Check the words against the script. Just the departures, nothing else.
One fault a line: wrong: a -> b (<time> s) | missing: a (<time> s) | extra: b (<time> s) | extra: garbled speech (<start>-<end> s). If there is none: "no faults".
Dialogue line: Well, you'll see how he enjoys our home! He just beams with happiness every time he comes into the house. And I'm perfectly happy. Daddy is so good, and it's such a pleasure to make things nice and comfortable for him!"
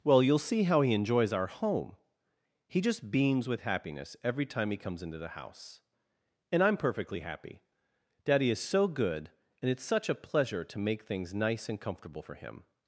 no faults